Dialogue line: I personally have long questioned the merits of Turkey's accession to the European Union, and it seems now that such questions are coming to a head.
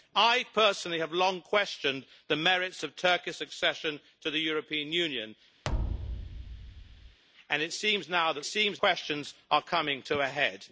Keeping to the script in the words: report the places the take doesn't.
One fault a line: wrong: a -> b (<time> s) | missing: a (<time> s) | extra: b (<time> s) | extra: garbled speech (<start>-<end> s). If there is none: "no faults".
wrong: such -> seems (8.4 s)